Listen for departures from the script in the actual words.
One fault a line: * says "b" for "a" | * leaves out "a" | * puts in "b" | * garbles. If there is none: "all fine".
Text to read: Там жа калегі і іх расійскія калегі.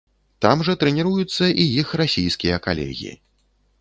* says "трэніруюцца" for "калегі"